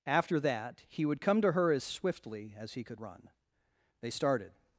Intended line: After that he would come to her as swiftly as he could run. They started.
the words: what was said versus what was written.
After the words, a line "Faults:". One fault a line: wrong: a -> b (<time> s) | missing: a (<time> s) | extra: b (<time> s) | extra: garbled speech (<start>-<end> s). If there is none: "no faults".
After that he would come to her as swiftly as he could run. They started.
Faults:
no faults